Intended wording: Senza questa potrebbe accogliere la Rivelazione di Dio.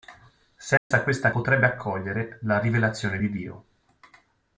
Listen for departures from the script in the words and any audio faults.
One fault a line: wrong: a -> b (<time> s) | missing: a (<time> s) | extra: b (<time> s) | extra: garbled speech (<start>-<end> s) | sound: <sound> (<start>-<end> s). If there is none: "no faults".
sound: dropout (0.8-0.9 s)